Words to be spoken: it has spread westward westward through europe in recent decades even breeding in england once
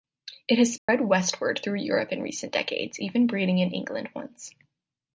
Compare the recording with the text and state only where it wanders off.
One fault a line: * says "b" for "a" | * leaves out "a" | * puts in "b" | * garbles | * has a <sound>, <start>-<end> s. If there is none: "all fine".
* has a dropout, 0.8-0.9 s
* leaves out "westward"